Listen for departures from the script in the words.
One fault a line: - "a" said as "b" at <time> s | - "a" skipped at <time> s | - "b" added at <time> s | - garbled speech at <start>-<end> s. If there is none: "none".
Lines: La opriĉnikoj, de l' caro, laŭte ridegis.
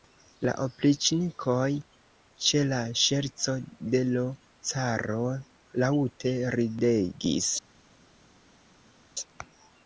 - "ĉe la ŝerco" added at 2.5 s